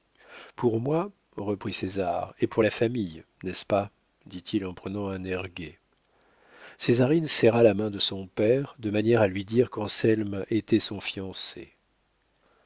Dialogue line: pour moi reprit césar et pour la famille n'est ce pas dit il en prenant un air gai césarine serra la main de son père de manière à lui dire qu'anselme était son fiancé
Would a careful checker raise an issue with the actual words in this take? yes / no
no